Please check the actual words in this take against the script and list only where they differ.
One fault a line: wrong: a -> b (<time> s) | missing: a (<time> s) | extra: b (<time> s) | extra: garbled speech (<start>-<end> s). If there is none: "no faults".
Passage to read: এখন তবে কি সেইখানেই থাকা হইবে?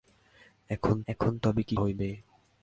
extra: এখন (1.1 s)
missing: সেইখানেই থাকা (1.7 s)